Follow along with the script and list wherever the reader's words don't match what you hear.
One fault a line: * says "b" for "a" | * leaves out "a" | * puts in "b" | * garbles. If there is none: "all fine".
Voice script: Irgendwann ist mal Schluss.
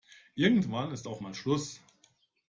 * puts in "auch"